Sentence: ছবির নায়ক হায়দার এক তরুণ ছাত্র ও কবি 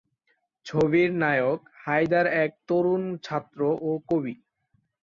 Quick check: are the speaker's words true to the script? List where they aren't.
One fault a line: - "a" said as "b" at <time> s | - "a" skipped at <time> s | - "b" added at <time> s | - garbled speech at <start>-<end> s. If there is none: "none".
none